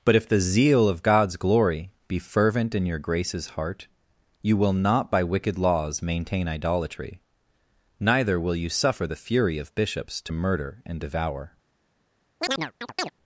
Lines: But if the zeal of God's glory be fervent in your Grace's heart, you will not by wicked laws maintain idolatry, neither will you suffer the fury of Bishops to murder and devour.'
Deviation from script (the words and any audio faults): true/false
true